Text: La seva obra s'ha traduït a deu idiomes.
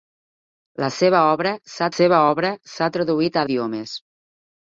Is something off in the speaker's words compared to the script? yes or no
yes